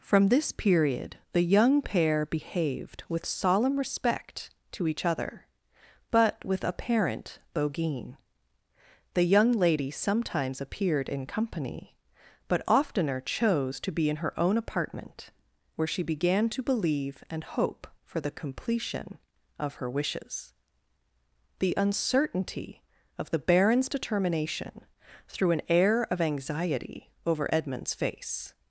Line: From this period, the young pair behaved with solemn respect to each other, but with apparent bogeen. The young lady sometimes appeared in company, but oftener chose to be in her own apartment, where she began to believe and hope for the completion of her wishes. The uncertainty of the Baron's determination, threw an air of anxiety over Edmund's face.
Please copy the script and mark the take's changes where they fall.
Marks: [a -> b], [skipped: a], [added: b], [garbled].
From this period, the young pair behaved with solemn respect to each other, but with apparent bogeen. The young lady sometimes appeared in company, but oftener chose to be in her own apartment, where she began to believe and hope for the completion of her wishes. The uncertainty of the Baron's determination, threw an air of anxiety over Edmund's face.